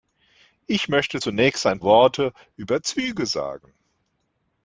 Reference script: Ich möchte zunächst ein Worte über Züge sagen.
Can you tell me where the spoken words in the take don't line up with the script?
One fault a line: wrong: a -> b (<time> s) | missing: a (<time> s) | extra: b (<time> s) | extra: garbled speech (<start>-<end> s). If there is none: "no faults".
no faults